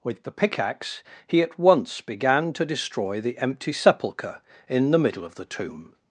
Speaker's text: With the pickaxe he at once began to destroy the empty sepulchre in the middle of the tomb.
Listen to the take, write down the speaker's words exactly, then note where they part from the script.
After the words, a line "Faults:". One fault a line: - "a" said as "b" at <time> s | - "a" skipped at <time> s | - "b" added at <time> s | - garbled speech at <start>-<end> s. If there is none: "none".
With the pickaxe he at once began to destroy the empty sepulchre in the middle of the tomb.
Faults:
none